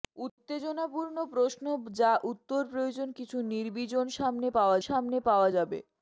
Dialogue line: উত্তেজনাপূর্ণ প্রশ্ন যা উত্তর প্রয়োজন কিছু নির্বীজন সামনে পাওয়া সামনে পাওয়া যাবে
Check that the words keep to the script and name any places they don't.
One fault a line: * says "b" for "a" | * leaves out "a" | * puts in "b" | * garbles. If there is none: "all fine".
all fine